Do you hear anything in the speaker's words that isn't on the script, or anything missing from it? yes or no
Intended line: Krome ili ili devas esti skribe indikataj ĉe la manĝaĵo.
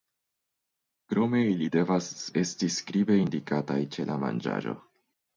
yes